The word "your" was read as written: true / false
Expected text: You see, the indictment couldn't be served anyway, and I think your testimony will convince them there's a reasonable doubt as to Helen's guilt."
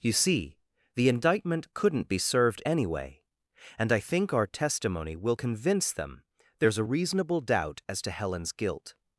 false